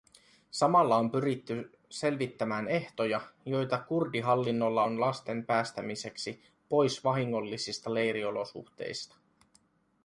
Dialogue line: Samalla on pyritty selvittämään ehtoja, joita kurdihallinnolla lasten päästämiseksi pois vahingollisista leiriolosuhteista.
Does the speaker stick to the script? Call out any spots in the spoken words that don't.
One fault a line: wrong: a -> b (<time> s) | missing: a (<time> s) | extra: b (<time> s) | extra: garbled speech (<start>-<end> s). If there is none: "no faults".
extra: on (4.8 s)